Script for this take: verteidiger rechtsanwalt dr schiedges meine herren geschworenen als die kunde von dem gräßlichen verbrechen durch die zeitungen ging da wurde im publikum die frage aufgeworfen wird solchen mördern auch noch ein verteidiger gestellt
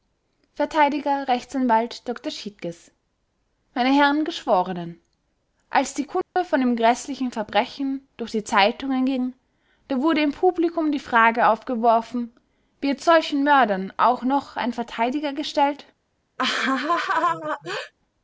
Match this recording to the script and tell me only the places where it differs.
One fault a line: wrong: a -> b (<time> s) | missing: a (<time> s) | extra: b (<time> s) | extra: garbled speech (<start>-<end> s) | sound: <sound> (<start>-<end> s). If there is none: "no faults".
sound: dropout (6.2-6.4 s)
sound: laugh (16.4-17.9 s)